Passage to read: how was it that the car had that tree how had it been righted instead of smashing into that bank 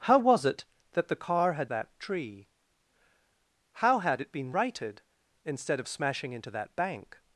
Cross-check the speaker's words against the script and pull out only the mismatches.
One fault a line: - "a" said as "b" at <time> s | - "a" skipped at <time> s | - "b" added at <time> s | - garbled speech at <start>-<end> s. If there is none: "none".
none